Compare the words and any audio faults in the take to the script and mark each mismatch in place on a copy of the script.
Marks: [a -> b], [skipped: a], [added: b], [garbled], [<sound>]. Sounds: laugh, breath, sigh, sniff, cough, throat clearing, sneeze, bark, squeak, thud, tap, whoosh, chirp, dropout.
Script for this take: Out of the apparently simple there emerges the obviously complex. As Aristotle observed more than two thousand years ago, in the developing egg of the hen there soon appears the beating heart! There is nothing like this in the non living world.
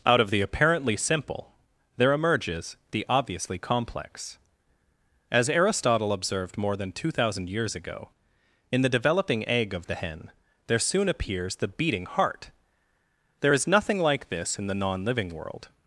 Out of the apparently simple there emerges the obviously complex. As Aristotle observed more than two thousand years ago, in the developing egg of the hen there soon appears the beating heart! There is nothing like this in the non living world.